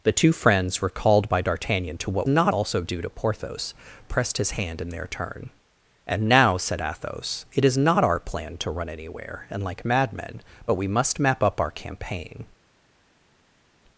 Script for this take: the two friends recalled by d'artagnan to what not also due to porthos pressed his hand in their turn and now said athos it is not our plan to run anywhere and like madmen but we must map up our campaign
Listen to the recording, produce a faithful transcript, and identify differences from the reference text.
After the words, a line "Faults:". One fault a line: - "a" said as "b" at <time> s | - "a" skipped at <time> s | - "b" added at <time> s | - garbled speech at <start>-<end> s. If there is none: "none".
the two friends recalled by d'artagnan to what not also due to porthos pressed his hand in their turn and now said athos it is not our plan to run anywhere and like madmen but we must map up our campaign
Faults:
none